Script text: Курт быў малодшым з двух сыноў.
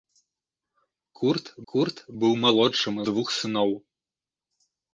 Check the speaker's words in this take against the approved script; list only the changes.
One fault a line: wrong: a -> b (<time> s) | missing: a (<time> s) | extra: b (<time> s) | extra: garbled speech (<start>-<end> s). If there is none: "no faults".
extra: курт (1.7 s)
missing: з (2.9 s)